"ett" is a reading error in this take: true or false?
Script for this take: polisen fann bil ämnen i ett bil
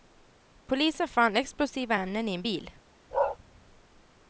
true